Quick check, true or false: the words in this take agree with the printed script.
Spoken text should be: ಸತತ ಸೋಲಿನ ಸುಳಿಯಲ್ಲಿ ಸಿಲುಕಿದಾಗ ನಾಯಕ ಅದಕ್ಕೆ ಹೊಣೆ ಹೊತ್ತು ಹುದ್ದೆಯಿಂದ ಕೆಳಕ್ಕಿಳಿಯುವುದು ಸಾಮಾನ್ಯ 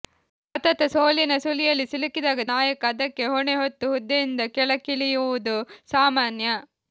true